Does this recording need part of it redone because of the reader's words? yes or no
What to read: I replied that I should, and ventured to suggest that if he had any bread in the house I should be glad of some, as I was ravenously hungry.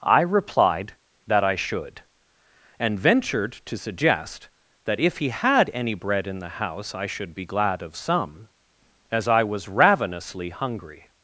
no